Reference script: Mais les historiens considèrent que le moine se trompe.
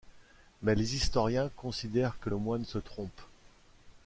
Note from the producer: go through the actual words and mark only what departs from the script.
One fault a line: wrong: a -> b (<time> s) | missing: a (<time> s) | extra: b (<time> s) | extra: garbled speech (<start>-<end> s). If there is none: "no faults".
no faults